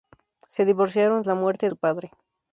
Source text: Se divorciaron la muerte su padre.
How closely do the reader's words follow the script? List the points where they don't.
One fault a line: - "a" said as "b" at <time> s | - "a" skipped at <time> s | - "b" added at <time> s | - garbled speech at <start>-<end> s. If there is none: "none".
none